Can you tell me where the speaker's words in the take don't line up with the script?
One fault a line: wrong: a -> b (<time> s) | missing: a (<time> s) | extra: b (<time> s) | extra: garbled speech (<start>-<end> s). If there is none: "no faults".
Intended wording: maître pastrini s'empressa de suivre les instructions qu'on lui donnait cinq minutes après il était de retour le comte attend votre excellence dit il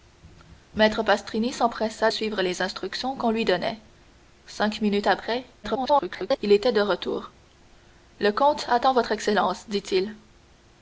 missing: de (2.1 s)
extra: garbled speech (5.6-6.4 s)